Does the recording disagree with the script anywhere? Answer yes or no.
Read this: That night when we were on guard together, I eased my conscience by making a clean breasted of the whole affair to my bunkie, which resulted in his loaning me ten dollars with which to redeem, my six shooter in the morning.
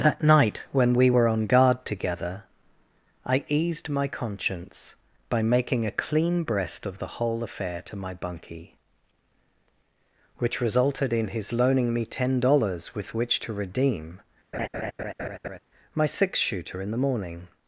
yes